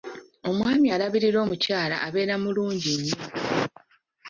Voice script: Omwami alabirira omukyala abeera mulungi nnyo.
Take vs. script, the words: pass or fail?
pass